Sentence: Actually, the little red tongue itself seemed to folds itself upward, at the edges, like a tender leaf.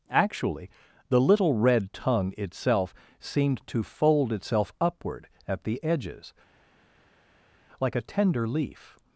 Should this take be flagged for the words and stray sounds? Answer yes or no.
yes